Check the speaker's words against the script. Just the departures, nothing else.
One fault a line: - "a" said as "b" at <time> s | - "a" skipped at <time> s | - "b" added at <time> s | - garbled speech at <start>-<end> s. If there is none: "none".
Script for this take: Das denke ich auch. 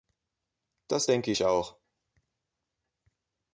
none